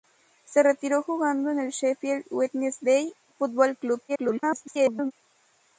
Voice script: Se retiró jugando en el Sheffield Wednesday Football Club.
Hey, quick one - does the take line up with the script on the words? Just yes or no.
no